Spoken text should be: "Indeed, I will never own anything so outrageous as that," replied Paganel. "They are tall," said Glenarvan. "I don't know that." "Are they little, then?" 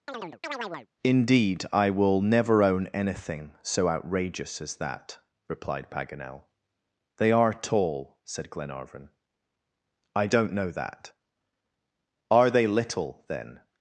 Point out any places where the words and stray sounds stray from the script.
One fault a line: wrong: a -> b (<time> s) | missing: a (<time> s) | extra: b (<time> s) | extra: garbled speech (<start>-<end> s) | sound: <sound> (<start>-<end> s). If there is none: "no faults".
sound: chirp (0.1-0.9 s)